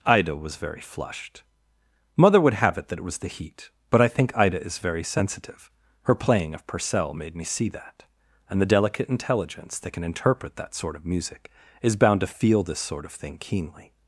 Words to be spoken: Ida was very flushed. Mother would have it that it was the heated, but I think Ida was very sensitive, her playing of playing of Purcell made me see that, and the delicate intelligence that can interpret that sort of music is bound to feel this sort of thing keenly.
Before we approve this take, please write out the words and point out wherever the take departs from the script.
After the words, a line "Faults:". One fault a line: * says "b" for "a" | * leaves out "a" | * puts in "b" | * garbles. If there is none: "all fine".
Ida was very flushed. Mother would have it that it was the heat, but I think Ida is very sensitive, her playing of Purcell made me see that, and the delicate intelligence that can interpret that sort of music is bound to feel this sort of thing keenly.
Faults:
* says "heat" for "heated"
* says "is" for "was"
* leaves out "playing of"